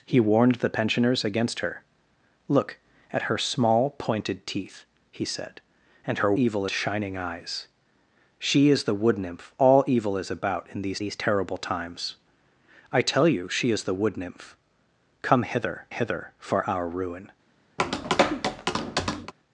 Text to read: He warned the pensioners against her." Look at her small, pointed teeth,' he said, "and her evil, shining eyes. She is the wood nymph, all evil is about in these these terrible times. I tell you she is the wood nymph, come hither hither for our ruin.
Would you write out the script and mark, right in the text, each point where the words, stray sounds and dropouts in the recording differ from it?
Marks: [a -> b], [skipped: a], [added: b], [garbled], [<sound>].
He warned the pensioners against her." Look at her small, pointed teeth,' he said, "and her evil, shining eyes. She is the wood nymph, all evil is about in these these terrible times. I tell you she is the wood nymph, come hither hither for our ruin. [tap]